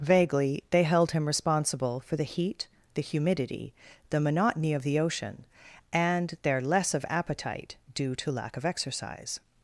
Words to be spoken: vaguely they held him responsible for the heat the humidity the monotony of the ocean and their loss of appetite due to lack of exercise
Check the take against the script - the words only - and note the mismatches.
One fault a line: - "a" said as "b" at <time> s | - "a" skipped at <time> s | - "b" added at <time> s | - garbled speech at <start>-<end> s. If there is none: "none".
- "loss" said as "less" at 6.6 s